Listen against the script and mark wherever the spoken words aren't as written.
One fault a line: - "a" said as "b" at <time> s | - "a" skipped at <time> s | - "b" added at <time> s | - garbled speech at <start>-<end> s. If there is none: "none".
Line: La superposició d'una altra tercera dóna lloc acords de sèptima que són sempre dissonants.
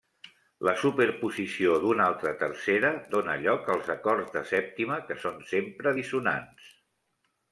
- "als" added at 3.8 s